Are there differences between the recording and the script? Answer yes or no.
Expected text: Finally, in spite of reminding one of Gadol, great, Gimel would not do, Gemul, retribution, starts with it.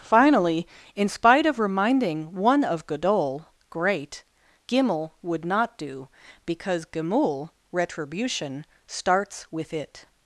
yes